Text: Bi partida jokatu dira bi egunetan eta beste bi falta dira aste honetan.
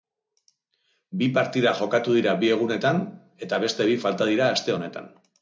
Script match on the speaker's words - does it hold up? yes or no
yes